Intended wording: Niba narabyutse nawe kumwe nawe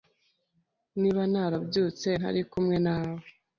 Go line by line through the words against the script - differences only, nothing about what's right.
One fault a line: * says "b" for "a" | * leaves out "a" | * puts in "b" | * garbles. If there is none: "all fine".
* says "ntari" for "nawe"